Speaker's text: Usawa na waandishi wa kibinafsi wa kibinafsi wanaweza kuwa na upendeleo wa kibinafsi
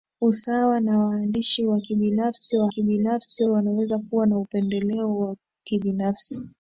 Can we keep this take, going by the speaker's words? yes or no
yes